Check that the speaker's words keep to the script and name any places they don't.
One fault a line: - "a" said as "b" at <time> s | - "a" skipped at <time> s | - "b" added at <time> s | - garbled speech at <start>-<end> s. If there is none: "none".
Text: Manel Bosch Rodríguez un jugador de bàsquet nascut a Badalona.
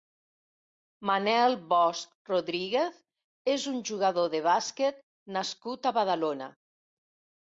- "és" added at 3.5 s